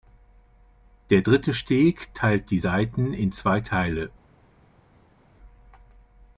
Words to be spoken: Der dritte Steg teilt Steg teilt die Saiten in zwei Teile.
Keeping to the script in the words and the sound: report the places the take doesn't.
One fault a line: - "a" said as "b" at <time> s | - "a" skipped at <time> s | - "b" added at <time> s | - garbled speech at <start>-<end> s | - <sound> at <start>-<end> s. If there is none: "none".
- "Steg teilt" skipped at 2.5 s